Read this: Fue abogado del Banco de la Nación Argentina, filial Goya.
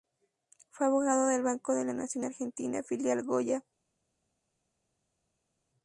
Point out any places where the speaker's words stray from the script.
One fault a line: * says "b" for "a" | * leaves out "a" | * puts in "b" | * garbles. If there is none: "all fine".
all fine